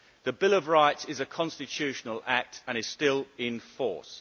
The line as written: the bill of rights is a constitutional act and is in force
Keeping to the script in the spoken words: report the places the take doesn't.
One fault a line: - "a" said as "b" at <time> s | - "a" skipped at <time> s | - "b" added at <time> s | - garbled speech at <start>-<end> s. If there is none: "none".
- "still" added at 2.8 s